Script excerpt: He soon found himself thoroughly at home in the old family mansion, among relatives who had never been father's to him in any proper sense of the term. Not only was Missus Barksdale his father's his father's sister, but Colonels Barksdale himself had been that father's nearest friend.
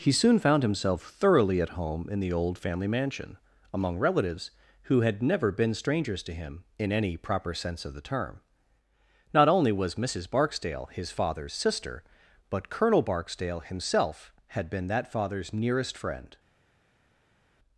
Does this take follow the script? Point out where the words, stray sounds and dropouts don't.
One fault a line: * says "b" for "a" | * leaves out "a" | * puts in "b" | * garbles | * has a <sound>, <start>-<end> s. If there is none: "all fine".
* says "strangers" for "father's"
* leaves out "his father's"
* says "Colonel" for "Colonels"